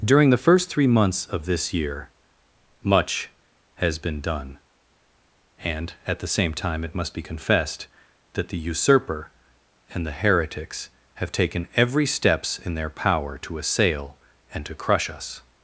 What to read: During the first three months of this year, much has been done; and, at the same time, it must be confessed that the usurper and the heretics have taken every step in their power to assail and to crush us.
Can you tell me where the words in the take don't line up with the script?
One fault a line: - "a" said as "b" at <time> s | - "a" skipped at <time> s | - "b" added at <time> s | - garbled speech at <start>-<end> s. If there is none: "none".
- "step" said as "steps" at 12.1 s